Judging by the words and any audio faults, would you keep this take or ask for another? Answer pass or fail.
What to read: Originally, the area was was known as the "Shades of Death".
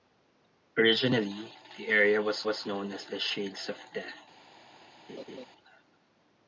fail